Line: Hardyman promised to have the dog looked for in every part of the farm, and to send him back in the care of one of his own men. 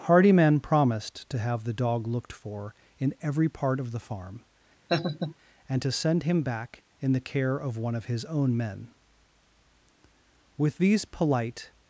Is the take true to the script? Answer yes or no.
no